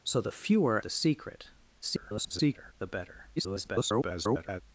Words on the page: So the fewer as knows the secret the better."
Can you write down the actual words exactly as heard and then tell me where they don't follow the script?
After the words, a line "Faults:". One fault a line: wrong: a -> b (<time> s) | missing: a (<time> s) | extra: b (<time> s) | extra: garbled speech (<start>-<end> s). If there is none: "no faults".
So the fewer the secret [garbled] the better." [garbled]
Faults:
missing: as knows (0.8 s)
extra: garbled speech (1.8-2.7 s)
extra: garbled speech (3.4-4.6 s)